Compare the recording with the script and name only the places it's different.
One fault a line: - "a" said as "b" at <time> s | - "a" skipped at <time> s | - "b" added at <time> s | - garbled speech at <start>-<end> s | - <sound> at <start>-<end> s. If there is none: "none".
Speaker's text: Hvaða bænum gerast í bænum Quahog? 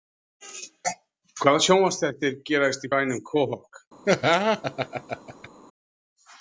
- "bænum" said as "sjónvarpsþættir" at 1.6 s
- laugh at 4.0-5.5 s